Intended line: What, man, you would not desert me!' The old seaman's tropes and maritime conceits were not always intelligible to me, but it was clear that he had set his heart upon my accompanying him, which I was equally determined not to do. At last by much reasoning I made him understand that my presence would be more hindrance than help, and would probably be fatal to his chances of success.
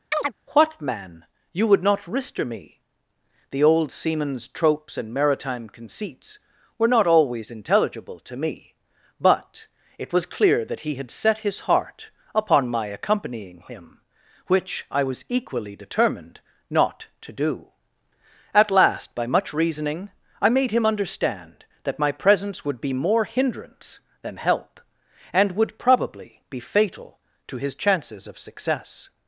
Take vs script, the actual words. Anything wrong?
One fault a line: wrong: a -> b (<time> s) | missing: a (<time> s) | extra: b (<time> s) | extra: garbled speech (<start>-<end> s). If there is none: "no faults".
wrong: desert -> rister (2.0 s)